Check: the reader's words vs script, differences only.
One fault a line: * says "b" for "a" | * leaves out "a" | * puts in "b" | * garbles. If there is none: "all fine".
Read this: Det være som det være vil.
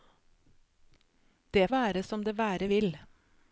all fine